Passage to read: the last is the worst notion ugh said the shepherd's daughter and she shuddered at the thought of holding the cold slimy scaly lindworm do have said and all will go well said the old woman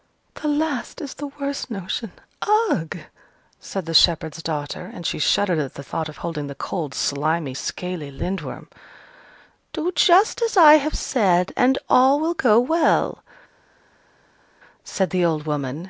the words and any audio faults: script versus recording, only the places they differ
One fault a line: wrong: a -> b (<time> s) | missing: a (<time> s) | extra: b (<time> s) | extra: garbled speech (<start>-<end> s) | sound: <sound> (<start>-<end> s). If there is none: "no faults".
extra: just as i (10.0 s)